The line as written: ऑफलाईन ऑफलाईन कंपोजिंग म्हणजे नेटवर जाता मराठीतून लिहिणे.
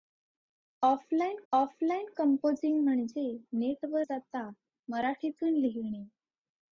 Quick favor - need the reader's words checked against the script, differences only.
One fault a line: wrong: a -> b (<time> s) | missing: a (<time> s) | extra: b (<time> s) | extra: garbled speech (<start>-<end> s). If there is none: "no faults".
no faults